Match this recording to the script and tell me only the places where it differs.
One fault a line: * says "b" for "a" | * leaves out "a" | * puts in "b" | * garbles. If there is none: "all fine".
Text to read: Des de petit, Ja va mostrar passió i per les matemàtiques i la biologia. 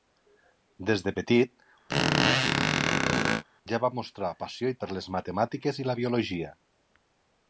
all fine